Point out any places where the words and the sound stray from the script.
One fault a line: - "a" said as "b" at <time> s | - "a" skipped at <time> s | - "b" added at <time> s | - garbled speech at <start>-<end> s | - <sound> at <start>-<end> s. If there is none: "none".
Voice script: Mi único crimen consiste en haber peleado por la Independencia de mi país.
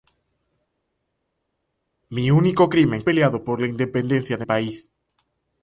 - "consiste en haber" skipped at 3.0 s
- "mi" skipped at 4.5 s